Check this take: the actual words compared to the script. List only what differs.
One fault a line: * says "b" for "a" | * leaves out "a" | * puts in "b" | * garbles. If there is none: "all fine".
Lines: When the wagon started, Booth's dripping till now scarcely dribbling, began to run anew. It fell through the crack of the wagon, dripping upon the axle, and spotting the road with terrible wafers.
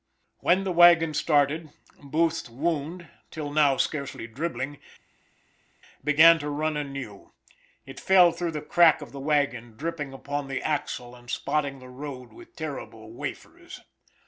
* says "wound" for "dripping"